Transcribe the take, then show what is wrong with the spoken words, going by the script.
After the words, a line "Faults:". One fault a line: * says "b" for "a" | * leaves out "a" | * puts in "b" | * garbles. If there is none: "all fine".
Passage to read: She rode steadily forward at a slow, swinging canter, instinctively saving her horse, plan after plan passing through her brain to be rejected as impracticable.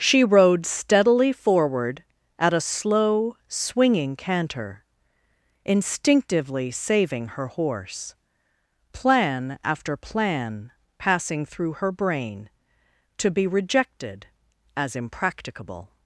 She rode steadily forward at a slow, swinging canter, instinctively saving her horse, plan after plan passing through her brain to be rejected as impracticable.
Faults:
all fine